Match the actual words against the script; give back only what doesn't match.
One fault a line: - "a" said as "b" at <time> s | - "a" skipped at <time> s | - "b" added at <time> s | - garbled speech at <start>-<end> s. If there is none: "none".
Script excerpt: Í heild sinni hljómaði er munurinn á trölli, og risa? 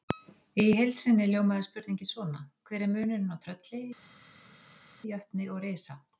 - "spurningin svona Hver" added at 1.7 s
- "jötni" added at 5.1 s